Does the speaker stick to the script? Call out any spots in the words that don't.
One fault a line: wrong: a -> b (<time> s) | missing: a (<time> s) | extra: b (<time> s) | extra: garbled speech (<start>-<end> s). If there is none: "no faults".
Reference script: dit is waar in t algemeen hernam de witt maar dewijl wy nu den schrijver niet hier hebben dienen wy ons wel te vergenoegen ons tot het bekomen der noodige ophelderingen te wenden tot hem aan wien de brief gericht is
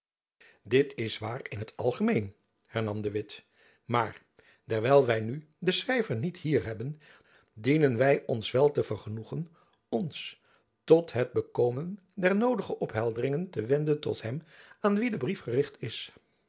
no faults